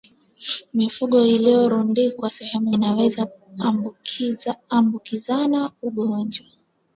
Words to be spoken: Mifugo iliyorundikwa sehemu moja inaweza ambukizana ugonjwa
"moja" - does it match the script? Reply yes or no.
no